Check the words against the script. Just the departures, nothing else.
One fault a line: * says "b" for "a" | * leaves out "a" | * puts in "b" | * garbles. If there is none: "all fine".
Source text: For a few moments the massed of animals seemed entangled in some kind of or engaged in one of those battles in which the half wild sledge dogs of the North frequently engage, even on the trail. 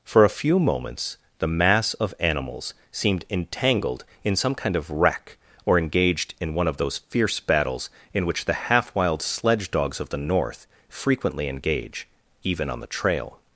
* says "mass" for "massed"
* puts in "wreck"
* puts in "fierce"